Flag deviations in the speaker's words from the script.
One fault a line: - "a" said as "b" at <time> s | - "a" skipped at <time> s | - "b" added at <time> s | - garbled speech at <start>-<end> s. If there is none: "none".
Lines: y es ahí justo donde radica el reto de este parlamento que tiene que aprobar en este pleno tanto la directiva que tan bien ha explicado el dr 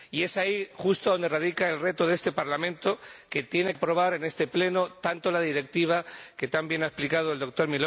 - "que" skipped at 3.7 s